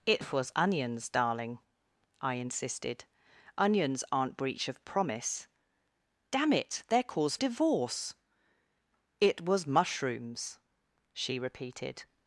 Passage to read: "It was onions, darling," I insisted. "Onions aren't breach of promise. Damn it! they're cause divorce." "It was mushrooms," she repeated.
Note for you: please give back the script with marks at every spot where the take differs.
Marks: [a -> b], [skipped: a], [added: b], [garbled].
"It was onions, darling," I insisted. "Onions aren't breach of promise. Damn it! they're cause divorce." "It was mushrooms," she repeated.